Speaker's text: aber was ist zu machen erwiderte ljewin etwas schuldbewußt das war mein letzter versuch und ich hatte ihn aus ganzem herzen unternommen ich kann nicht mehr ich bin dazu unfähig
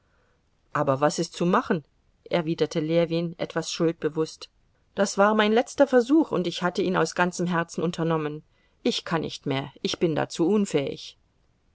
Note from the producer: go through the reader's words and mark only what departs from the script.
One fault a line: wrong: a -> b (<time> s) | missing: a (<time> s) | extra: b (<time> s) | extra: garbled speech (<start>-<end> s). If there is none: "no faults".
no faults